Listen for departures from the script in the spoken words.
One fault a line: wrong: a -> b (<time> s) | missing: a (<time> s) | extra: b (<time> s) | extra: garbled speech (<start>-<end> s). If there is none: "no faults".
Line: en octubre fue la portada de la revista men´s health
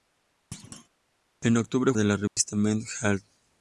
missing: fue la portada (1.9 s)